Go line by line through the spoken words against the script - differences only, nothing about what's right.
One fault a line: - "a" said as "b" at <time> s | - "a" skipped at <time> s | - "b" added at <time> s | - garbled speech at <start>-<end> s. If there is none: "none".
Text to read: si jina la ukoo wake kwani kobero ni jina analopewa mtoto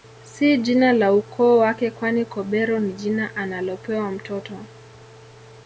none